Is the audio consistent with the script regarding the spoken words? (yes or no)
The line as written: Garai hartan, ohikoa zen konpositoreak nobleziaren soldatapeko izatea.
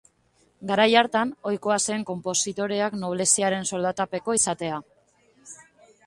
yes